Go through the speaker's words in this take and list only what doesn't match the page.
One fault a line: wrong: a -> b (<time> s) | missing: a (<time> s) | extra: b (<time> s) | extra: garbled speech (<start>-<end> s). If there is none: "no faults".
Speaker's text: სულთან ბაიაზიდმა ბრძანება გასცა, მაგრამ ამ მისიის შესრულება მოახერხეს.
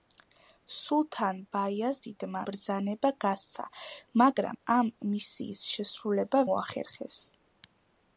no faults